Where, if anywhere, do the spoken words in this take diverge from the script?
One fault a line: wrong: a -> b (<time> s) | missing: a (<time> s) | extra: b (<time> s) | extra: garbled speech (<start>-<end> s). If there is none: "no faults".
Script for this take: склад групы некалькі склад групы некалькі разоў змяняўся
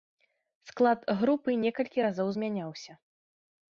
missing: склад групы некалькі (2.0 s)